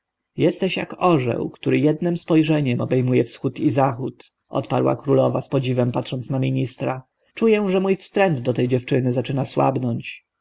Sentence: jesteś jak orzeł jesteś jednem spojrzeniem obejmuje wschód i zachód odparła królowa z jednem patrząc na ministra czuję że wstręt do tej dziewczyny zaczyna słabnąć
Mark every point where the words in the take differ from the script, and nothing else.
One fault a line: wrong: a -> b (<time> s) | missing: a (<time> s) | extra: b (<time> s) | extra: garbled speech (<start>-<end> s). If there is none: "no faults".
wrong: jesteś -> który (1.5 s)
wrong: jednem -> podziwem (5.5 s)
extra: mój (7.8 s)